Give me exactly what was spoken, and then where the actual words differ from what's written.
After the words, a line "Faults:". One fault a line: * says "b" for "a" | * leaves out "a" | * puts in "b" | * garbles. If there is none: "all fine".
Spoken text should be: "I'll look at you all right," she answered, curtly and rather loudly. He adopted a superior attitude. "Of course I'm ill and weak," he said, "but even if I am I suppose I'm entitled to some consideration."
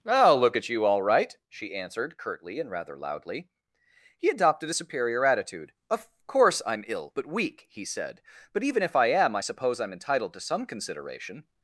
"I'll look at you all right," she answered, curtly and rather loudly. He adopted a superior attitude. "Of course I'm ill but weak," he said, "but even if I am I suppose I'm entitled to some consideration."
Faults:
* says "but" for "and"